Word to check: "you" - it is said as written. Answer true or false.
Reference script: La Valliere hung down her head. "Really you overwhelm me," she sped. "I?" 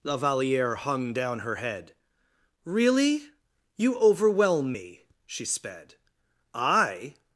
true